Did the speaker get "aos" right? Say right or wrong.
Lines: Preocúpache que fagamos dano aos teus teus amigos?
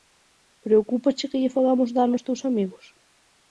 right